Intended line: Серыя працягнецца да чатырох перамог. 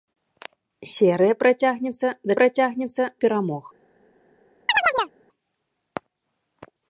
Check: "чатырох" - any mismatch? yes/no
yes